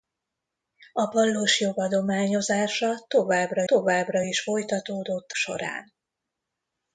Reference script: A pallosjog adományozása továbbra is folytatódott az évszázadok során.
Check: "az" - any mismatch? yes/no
yes